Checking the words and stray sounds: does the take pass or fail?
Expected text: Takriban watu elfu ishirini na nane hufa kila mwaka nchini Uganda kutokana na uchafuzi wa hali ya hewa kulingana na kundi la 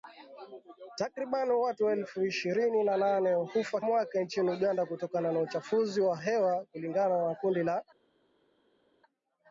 fail